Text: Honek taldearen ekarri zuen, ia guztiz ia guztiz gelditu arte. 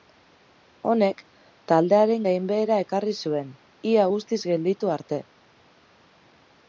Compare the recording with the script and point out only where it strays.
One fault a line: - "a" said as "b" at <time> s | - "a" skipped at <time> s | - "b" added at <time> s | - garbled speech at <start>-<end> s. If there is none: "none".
- "gainbehera" added at 2.3 s
- "ia guztiz" skipped at 4.4 s